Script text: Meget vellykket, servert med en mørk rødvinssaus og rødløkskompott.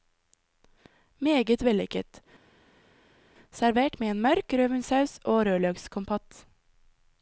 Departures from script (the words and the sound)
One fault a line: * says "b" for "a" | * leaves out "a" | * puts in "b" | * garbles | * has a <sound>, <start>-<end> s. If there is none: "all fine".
all fine